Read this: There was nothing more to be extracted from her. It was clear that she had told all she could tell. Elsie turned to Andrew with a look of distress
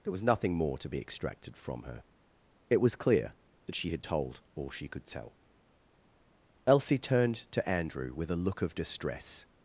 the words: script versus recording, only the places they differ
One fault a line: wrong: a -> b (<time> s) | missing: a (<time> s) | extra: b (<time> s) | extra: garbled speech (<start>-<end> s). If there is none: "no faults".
no faults